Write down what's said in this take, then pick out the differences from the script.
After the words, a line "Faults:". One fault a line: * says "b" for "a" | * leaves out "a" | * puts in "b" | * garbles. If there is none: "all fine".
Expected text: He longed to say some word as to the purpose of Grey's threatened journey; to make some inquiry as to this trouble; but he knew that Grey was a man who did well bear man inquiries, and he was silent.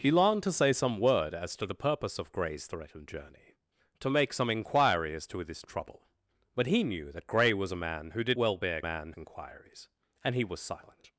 He longed to say some word as to the purpose of Grey's threatened journey; to make some inquiry as to this trouble; but he knew that Grey was a man who did well bear man inquiries, and he was silent.
Faults:
all fine